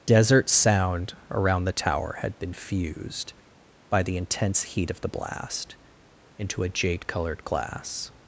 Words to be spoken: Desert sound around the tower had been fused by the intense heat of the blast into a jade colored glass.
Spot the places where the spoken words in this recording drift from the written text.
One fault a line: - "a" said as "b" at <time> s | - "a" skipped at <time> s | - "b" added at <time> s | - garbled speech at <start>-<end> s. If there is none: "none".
none